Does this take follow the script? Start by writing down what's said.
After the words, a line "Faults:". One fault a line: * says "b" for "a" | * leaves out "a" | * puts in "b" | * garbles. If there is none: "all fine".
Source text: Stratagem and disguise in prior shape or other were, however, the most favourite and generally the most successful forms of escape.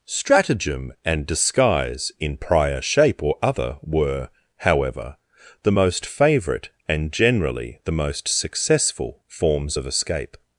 Stratagem and disguise in prior shape or other were, however, the most favourite and generally the most successful forms of escape.
Faults:
all fine